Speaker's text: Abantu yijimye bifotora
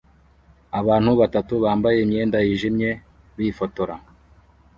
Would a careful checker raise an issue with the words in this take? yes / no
yes